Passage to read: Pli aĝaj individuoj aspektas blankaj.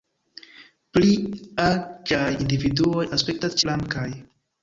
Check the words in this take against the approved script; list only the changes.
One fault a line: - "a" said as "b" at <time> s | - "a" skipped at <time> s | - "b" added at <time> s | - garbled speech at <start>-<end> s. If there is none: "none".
none